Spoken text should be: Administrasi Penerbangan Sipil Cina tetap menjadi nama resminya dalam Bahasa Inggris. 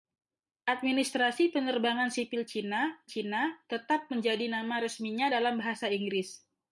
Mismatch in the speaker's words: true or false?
true